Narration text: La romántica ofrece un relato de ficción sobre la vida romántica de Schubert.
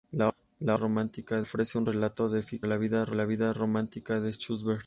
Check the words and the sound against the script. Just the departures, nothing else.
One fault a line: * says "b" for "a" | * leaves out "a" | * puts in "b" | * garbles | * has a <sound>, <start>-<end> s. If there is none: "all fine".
all fine